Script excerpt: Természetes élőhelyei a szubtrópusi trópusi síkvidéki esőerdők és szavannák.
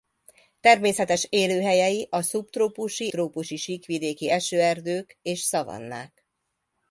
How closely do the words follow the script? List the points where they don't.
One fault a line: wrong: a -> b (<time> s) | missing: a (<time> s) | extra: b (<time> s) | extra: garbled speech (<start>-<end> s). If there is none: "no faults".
no faults